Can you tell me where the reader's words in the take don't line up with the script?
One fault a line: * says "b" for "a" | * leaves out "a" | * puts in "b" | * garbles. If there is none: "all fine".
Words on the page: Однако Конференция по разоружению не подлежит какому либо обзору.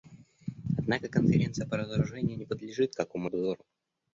* leaves out "либо"